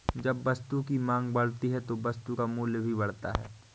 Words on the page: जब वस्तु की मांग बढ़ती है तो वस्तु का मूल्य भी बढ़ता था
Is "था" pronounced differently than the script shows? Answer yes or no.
yes